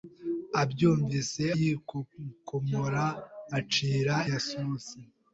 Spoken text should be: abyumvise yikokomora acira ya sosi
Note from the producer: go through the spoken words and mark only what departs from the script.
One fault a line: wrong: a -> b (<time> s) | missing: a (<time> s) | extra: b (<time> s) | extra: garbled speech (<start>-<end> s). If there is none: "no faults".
no faults